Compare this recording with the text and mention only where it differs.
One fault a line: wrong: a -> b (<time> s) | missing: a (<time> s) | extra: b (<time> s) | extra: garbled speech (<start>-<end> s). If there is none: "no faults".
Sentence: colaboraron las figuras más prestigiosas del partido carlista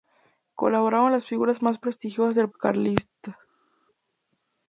missing: partido (2.5 s)